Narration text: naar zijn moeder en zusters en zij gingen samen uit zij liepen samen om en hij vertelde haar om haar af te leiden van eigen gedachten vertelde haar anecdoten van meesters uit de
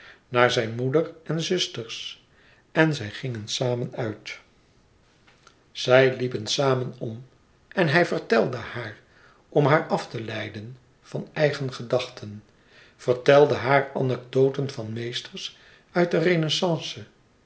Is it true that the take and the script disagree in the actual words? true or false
false